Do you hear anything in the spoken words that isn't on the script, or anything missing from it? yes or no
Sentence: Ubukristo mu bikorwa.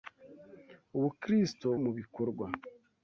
no